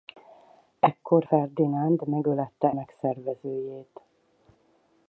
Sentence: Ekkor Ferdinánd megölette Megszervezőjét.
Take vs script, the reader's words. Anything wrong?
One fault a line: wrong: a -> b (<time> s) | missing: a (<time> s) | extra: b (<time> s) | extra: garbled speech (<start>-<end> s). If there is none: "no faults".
no faults